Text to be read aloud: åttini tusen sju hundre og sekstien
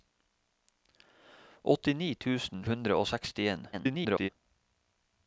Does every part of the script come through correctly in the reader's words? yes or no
no